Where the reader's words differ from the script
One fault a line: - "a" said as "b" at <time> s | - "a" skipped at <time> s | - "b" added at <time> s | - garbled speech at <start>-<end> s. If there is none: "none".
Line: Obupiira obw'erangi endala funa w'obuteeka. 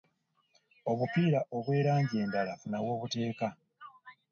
none